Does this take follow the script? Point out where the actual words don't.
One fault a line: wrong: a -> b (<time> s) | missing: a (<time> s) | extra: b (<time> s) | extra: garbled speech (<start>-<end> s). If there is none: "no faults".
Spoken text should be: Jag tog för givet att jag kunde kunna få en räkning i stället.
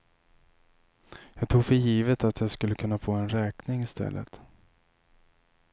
wrong: kunde -> skulle (2.5 s)